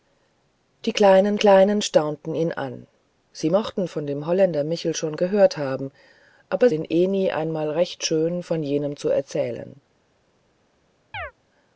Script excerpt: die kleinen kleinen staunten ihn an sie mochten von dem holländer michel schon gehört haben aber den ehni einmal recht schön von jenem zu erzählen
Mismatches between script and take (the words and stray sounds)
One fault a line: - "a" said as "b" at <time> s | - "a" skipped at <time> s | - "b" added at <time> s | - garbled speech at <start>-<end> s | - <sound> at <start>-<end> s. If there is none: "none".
- chirp at 11.1-11.3 s